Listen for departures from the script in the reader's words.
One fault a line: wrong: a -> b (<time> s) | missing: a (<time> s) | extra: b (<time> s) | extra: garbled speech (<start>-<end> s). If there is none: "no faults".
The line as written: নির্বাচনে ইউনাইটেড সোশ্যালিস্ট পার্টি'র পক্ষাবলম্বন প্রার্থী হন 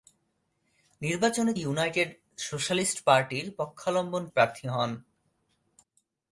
no faults